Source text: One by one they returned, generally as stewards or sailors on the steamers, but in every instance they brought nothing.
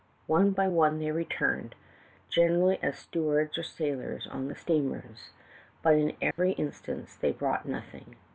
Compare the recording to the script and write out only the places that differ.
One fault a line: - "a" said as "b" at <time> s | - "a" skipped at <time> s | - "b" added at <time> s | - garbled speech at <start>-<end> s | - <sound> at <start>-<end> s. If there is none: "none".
- dropout at 6.3-6.4 s